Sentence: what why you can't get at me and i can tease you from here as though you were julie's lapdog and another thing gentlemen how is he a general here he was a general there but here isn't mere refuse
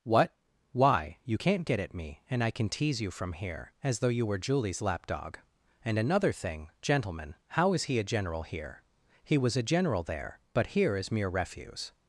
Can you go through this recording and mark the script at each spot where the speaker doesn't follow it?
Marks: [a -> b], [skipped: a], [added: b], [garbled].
what why you can't get at me and i can tease you from here as though you were julie's lapdog and another thing gentlemen how is he a general here he was a general there but here [isn't -> is] mere refuse